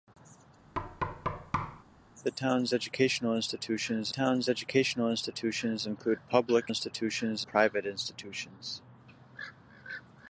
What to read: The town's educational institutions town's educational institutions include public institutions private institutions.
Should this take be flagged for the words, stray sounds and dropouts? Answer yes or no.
yes